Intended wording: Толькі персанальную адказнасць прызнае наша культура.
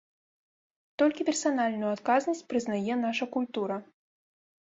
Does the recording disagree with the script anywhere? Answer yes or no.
no